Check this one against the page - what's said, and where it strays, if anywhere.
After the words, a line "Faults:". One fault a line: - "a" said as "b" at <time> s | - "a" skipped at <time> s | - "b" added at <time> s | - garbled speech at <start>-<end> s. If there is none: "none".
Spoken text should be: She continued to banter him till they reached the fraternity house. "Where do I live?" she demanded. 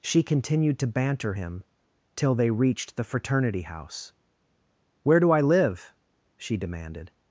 She continued to banter him till they reached the fraternity house. "Where do I live?" she demanded.
Faults:
none